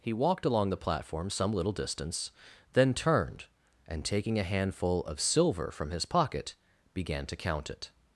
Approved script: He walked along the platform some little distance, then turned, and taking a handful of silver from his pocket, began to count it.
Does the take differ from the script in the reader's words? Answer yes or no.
no